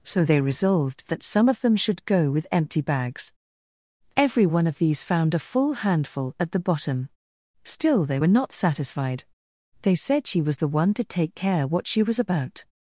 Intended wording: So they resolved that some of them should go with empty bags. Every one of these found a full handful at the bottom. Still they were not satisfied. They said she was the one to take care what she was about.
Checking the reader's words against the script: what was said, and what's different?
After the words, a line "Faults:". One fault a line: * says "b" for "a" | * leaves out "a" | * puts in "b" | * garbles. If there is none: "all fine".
So they resolved that some of them should go with empty bags. Every one of these found a full handful at the bottom. Still they were not satisfied. They said she was the one to take care what she was about.
Faults:
all fine